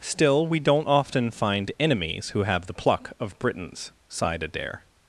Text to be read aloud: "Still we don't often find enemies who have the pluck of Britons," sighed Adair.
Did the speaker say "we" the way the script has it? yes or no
yes